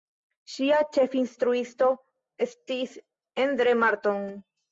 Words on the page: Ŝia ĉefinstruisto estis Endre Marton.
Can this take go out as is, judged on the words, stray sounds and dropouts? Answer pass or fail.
pass